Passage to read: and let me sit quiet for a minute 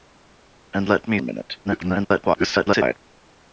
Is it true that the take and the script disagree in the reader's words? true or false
true